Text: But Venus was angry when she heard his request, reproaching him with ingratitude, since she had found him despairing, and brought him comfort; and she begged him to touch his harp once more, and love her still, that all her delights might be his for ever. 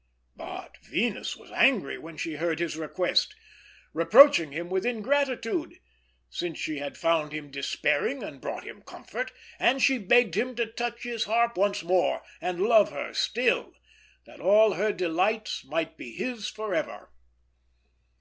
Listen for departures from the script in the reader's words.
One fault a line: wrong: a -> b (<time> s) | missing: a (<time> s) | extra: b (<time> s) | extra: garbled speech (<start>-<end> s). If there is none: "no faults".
no faults